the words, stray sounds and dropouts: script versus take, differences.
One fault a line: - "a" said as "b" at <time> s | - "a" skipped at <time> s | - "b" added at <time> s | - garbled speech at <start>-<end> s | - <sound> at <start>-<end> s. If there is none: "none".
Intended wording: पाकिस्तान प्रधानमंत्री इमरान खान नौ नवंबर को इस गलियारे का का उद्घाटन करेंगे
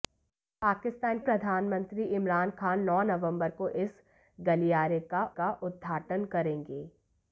none